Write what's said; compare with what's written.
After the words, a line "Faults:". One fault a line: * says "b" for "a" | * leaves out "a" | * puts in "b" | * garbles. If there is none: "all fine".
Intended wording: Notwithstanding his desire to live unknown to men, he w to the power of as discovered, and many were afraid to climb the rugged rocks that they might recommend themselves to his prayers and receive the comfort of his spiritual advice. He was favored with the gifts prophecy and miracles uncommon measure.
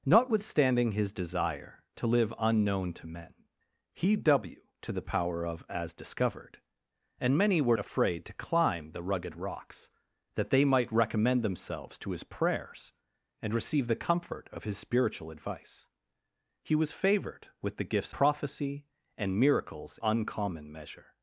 Notwithstanding his desire to live unknown to men, he w to the power of as discovered, and many were afraid to climb the rugged rocks that they might recommend themselves to his prayers and receive the comfort of his spiritual advice. He was favored with the gifts prophecy and miracles uncommon measure.
Faults:
all fine